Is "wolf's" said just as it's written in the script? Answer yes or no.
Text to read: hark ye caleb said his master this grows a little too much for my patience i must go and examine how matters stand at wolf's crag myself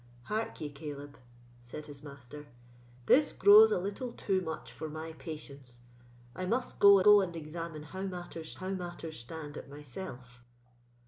no